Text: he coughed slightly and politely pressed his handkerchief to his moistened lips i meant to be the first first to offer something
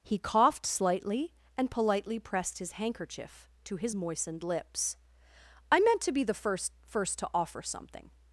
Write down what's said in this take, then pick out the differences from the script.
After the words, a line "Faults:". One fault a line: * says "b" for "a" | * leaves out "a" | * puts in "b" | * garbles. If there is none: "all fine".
he coughed slightly and politely pressed his handkerchief to his moistened lips i meant to be the first first to offer something
Faults:
all fine